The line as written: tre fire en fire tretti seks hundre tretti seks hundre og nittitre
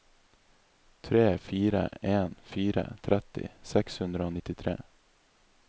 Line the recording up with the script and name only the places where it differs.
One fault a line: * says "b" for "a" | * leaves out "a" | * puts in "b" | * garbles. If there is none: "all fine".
* leaves out "tretti seks hundre"